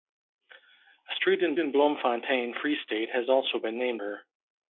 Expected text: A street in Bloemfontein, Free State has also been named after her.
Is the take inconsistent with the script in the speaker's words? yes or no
yes